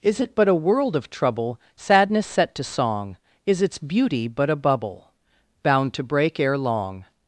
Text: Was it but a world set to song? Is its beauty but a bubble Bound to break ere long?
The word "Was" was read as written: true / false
false